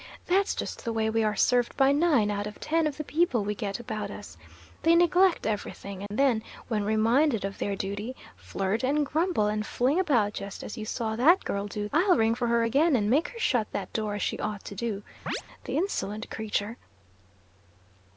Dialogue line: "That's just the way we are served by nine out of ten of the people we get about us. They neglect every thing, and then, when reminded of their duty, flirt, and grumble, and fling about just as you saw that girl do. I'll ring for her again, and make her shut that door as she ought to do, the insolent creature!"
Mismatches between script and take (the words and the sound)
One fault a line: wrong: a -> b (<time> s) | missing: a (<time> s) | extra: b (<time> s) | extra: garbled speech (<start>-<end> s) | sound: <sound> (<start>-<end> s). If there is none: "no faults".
sound: dropout (6.1-6.1 s)
sound: chirp (15.3-15.4 s)